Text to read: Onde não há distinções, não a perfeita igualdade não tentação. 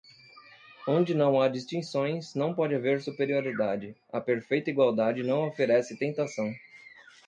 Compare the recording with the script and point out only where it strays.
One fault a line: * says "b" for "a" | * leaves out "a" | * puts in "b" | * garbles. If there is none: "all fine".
* puts in "pode haver superioridade"
* puts in "oferece"